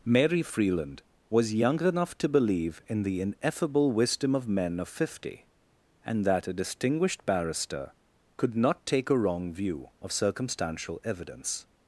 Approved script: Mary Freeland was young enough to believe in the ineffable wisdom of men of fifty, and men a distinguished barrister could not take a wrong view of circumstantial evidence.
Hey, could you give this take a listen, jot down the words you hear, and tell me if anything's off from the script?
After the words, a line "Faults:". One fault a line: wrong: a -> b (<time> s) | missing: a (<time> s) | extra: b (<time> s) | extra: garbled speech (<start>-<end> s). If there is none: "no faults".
Mary Freeland was young enough to believe in the ineffable wisdom of men of fifty, and that a distinguished barrister could not take a wrong view of circumstantial evidence.
Faults:
wrong: men -> that (6.2 s)